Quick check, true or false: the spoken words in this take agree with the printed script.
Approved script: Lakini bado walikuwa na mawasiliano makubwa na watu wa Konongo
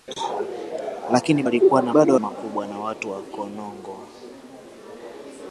false